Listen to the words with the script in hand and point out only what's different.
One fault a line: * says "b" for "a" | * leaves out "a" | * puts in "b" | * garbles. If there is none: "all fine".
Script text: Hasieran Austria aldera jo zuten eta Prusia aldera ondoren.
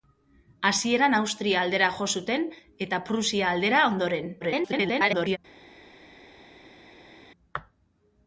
* garbles